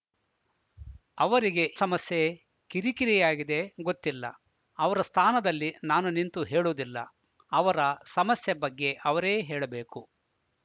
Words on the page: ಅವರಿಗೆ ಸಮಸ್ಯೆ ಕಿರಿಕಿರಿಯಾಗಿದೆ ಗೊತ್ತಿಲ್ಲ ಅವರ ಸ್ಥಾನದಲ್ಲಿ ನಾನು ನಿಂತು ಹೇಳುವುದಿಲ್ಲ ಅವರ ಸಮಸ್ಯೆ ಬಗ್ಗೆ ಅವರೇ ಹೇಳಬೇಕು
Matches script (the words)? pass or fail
pass